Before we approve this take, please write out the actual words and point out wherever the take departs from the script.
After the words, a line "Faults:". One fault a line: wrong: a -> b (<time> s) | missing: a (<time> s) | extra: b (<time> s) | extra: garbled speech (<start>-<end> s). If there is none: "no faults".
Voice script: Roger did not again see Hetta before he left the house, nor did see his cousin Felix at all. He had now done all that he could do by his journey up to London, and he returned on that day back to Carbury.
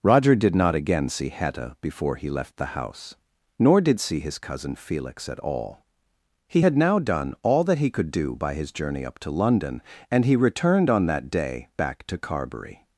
Roger did not again see Hetta before he left the house, nor did see his cousin Felix at all. He had now done all that he could do by his journey up to London, and he returned on that day back to Carbury.
Faults:
no faults